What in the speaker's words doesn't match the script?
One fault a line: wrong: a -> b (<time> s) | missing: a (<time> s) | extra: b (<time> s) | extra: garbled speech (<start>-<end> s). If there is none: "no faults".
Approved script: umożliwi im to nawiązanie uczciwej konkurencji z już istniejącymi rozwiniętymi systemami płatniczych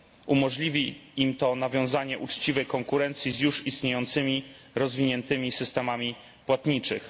no faults